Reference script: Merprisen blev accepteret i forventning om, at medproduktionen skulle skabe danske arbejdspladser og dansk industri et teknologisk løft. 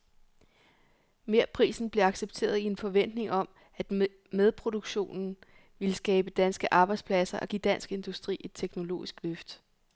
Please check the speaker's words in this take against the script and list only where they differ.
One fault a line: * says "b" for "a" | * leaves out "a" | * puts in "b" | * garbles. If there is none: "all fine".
* puts in "en"
* says "ville" for "skulle"
* puts in "give"